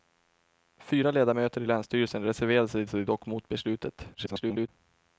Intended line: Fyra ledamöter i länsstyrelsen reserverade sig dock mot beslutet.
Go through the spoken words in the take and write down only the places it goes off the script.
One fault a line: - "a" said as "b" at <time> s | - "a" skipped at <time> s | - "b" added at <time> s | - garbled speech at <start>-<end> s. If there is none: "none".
- "sig" added at 2.9 s
- garbled speech at 4.1-4.7 s